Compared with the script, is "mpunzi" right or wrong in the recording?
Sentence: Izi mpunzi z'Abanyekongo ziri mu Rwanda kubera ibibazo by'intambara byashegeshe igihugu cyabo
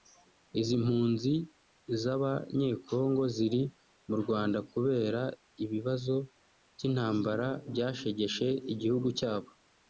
right